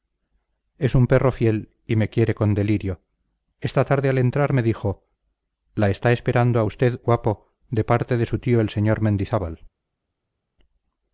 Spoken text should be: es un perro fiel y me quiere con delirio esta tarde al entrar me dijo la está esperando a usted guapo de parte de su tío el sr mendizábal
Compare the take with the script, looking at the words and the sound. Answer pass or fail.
pass